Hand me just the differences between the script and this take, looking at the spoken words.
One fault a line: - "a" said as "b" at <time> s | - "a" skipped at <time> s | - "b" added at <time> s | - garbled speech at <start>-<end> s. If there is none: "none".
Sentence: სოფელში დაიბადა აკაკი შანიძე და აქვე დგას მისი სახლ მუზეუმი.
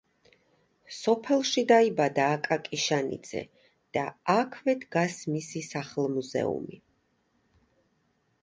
none